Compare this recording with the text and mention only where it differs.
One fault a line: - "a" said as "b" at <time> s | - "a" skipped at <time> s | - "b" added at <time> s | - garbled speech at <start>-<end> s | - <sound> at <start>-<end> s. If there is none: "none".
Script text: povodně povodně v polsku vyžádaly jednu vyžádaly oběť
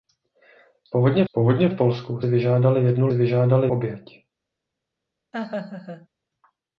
- laugh at 5.3-6.1 s